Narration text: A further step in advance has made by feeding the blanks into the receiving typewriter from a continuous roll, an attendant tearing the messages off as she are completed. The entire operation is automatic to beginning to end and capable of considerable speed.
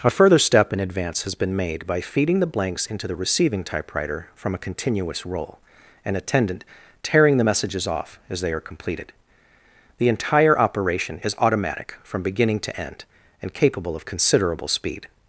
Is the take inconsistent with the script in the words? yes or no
yes